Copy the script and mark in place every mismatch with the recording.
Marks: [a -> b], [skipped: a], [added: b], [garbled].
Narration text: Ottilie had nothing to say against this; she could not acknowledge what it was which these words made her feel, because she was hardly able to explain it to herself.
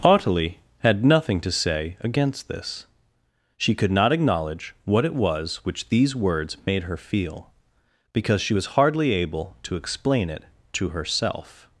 Ottilie had nothing to say against this; she could not acknowledge what it was which these words made her feel, because she was hardly able to explain it to herself.